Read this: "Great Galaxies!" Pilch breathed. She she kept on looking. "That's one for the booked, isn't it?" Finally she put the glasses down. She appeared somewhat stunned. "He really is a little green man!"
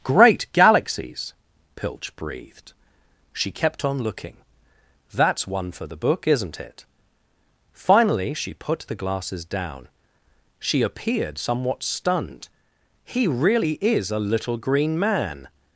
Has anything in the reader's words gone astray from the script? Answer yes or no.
yes